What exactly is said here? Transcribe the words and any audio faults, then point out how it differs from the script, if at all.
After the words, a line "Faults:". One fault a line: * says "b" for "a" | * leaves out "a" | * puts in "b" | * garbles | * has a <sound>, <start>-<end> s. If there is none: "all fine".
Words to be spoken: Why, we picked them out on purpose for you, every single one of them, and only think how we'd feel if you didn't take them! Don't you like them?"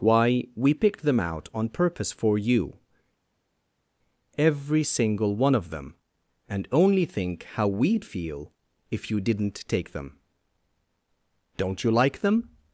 Why, we picked them out on purpose for you, every single one of them, and only think how we'd feel if you didn't take them! Don't you like them?"
Faults:
all fine